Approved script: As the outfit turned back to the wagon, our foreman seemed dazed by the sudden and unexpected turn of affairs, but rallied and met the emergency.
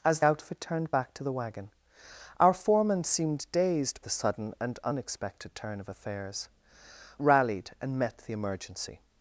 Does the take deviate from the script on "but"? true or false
true